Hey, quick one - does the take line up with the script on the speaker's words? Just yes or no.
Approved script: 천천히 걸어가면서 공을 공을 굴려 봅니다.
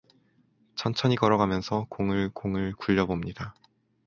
yes